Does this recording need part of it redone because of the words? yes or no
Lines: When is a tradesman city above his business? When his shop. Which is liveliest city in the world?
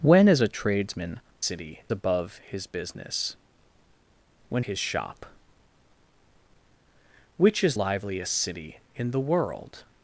no